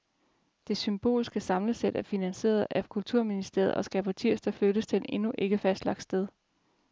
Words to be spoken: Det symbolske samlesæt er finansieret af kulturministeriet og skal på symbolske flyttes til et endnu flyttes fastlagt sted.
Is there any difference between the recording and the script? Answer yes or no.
yes